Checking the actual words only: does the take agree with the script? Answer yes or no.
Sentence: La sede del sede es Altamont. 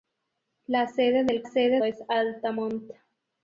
yes